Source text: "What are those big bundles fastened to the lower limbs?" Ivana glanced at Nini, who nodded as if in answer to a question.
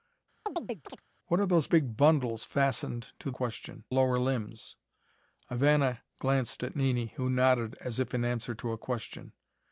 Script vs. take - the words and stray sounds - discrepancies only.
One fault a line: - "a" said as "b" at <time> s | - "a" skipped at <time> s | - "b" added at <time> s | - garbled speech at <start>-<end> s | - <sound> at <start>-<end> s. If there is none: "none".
- chirp at 0.5-1.0 s
- "the" said as "question" at 3.3 s